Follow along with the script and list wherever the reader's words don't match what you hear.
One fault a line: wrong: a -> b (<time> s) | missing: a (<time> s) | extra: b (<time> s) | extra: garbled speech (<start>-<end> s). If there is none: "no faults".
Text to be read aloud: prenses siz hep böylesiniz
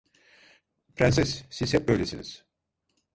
no faults